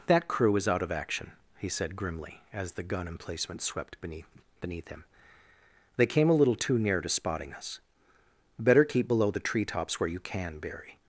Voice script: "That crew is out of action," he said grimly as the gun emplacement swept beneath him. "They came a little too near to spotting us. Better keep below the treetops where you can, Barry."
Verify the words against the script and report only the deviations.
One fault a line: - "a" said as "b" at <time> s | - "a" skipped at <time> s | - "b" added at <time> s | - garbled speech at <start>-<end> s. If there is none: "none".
- "beneath" added at 4.6 s